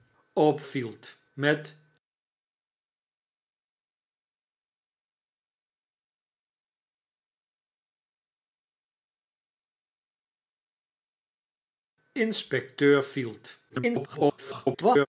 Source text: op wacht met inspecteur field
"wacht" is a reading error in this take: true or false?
true